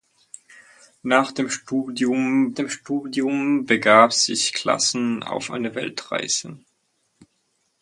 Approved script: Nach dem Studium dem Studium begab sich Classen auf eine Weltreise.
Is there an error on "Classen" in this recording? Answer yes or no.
no